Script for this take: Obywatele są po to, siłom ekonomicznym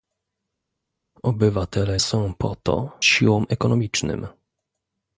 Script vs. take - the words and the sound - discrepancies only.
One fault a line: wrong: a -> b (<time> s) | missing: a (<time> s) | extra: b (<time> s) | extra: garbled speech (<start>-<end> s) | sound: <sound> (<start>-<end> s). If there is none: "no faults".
no faults